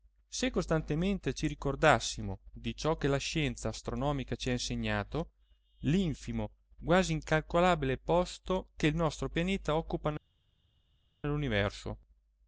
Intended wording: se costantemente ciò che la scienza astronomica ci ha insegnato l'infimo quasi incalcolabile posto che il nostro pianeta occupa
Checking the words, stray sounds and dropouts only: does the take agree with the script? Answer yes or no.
no